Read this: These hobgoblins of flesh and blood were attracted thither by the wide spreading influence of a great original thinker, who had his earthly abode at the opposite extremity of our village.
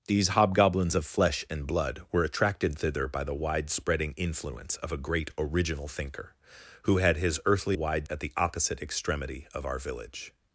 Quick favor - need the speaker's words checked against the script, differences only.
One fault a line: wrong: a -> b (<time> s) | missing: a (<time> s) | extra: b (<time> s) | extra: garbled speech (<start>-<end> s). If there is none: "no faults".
wrong: abode -> wide (7.7 s)